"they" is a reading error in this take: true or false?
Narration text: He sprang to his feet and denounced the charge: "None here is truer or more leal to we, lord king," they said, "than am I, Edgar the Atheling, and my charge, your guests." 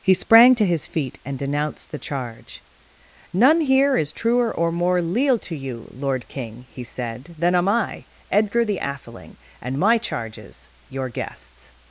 true